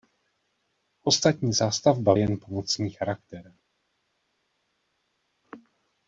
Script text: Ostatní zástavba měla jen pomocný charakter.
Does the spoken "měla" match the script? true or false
false